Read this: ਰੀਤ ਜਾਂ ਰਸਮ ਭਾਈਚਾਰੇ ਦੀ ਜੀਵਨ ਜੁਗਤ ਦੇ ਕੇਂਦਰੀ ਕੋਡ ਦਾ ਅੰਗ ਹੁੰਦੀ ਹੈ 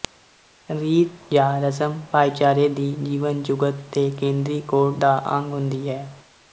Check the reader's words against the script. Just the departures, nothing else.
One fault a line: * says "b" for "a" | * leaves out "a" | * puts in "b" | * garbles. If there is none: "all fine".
all fine